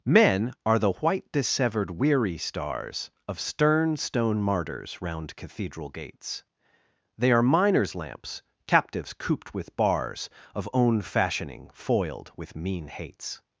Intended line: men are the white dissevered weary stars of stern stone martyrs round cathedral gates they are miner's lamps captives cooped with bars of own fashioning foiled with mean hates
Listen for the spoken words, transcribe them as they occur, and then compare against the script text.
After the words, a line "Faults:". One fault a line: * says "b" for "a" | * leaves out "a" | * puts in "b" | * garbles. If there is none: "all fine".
men are the white dissevered weary stars of stern stone martyrs round cathedral gates they are miner's lamps captives cooped with bars of own fashioning foiled with mean hates
Faults:
all fine